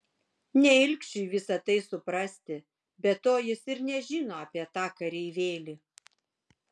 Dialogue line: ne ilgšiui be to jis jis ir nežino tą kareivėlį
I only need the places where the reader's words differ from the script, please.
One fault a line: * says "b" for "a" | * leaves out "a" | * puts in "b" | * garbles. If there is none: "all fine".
* puts in "visa tai suprasti"
* leaves out "jis"
* puts in "apie"